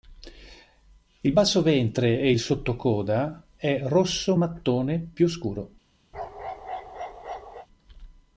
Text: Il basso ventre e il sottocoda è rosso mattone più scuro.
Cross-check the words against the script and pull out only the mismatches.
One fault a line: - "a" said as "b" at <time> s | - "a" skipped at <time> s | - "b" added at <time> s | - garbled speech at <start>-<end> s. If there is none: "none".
none